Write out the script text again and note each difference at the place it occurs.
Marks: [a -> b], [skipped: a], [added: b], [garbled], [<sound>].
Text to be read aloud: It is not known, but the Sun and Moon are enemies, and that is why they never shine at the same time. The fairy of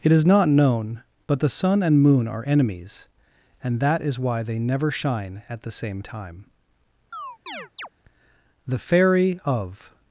It is not known, but the Sun and Moon are enemies, and that is why they never shine at the same time. [chirp] The fairy of